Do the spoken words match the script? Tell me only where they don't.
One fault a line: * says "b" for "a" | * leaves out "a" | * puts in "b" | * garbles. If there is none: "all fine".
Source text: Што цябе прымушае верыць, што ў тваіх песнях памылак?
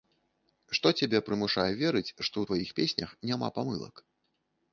* puts in "няма"